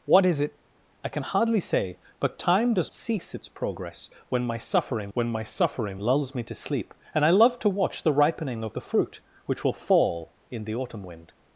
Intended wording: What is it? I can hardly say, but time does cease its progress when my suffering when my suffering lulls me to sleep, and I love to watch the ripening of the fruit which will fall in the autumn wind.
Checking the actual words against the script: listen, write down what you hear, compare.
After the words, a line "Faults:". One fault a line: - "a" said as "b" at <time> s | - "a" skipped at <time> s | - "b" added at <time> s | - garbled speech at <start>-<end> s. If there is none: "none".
What is it? I can hardly say, but time does cease its progress when my suffering when my suffering lulls me to sleep, and I love to watch the ripening of the fruit which will fall in the autumn wind.
Faults:
none